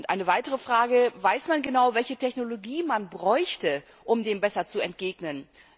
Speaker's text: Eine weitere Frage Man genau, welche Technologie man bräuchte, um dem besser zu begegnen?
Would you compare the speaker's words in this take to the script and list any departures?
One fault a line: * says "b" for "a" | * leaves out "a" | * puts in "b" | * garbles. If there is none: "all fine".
* puts in "Weiß"